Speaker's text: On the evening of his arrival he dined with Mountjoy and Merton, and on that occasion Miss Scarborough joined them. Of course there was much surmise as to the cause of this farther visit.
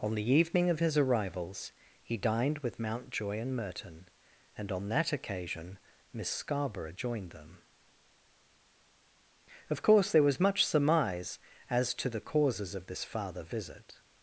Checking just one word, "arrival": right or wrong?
wrong